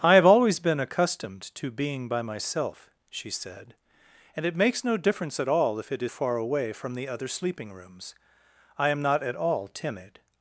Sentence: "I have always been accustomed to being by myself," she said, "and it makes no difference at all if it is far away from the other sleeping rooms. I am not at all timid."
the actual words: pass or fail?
pass